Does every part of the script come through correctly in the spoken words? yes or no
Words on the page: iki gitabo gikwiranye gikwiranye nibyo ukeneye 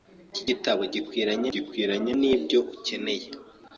yes